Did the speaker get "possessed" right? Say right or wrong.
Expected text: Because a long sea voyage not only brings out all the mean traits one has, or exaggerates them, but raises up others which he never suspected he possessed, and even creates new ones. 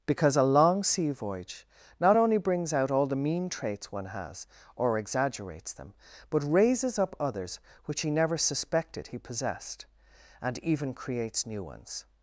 right